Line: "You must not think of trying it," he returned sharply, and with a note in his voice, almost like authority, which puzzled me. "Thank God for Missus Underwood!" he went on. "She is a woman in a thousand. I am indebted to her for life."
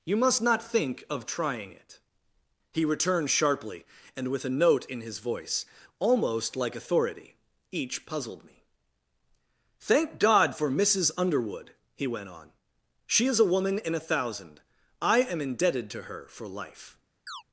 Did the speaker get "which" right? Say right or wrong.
wrong